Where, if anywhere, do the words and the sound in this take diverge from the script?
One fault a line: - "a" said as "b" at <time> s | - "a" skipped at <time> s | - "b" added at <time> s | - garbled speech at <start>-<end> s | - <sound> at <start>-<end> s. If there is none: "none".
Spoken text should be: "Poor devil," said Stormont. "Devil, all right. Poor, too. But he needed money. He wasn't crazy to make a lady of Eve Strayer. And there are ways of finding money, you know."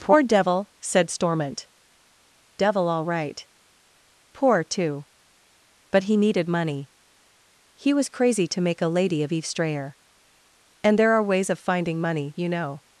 - "wasn't" said as "was" at 7.9 s